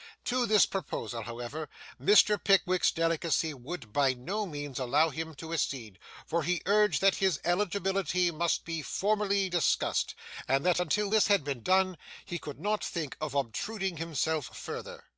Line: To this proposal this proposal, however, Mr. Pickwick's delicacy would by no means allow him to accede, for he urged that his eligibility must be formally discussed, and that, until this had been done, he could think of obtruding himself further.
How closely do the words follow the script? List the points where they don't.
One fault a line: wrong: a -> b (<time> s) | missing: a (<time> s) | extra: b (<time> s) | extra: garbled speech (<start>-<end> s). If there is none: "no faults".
missing: this proposal (1.2 s)
extra: not (12.6 s)